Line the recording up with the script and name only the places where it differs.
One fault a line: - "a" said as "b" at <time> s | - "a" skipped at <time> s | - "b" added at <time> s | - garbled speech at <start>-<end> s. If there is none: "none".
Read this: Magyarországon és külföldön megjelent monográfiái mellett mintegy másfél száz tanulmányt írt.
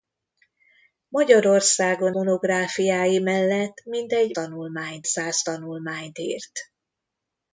- "és külföldön megjelent" skipped at 2.1 s
- "másfél" said as "tanulmányt" at 4.3 s